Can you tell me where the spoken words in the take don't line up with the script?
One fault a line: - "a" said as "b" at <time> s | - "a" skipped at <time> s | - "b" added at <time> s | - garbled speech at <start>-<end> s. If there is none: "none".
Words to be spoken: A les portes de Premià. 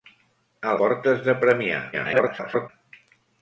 - "les" skipped at 0.7 s
- garbled speech at 1.9-2.7 s